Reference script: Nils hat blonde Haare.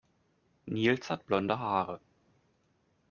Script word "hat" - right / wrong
right